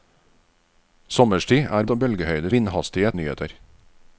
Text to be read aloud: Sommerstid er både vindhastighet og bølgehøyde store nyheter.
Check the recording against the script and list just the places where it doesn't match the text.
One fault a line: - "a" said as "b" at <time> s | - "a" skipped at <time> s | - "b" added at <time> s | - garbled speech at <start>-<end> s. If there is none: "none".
- "både vindhastighet" skipped at 1.9 s
- "store" said as "vindhastighet" at 2.5 s